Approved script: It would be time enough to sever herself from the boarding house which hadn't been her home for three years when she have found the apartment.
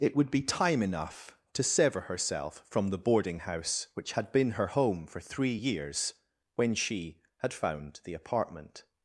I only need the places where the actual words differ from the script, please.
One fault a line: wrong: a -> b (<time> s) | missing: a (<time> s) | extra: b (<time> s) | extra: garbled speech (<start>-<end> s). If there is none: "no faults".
wrong: hadn't -> had (4.1 s)
wrong: have -> had (7.4 s)